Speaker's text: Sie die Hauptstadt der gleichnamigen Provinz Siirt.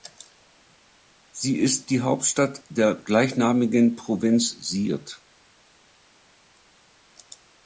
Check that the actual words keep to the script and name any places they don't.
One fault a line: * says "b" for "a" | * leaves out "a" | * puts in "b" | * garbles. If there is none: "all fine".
* puts in "ist"